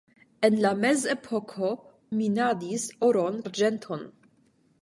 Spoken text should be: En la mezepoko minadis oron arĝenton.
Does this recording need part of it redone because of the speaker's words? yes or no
no